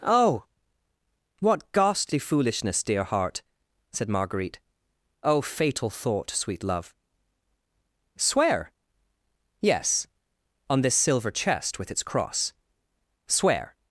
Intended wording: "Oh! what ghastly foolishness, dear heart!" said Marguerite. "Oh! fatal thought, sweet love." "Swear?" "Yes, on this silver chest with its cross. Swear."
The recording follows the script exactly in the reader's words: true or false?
true